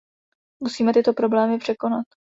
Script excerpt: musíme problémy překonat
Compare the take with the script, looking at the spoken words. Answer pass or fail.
fail